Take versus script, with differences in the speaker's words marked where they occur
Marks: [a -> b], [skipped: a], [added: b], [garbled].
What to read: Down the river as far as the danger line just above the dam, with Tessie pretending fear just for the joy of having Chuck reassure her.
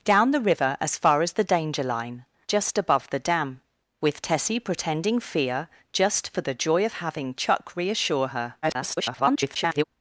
Down the river as far as the danger line just above the dam, with Tessie pretending fear just for the joy of having Chuck reassure her. [garbled]